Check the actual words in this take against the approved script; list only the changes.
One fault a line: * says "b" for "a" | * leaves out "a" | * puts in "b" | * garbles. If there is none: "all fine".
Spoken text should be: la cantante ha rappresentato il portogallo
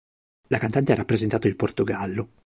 all fine